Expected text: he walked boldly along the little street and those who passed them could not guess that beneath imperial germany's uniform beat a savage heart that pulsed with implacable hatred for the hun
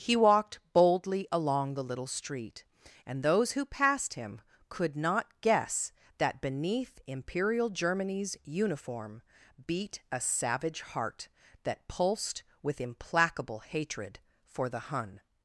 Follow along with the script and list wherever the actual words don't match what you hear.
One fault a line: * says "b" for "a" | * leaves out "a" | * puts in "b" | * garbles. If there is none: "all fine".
* says "him" for "them"